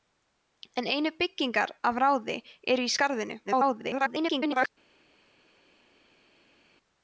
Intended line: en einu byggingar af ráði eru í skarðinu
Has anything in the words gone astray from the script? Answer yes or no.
yes